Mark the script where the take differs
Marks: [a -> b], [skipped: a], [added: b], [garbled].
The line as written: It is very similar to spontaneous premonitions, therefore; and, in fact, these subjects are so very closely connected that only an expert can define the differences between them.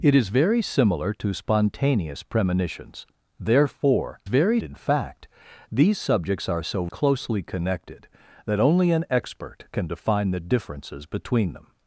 It is very similar to spontaneous premonitions, therefore; [and, -> very] in fact, these subjects are so [skipped: very] closely connected that only an expert can define the differences between them.